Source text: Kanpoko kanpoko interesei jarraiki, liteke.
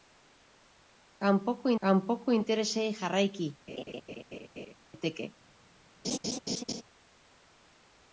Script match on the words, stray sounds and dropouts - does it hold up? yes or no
no